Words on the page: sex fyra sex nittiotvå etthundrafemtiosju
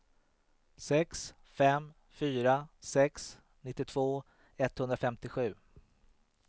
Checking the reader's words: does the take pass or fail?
fail